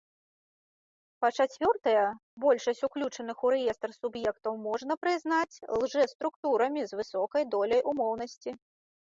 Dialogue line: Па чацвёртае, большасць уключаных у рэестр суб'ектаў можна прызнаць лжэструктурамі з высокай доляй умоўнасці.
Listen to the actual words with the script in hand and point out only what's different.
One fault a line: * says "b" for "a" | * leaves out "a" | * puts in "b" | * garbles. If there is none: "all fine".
all fine